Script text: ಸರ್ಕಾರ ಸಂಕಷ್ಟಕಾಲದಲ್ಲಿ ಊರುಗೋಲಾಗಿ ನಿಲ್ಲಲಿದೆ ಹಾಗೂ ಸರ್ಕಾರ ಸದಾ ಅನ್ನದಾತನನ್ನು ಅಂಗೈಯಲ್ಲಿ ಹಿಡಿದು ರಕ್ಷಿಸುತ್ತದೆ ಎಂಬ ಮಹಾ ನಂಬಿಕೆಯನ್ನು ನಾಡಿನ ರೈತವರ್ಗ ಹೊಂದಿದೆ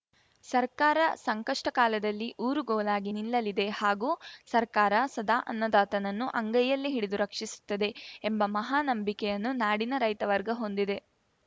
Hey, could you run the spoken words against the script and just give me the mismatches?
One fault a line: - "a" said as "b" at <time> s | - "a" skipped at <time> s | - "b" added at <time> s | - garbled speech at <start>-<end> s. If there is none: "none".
none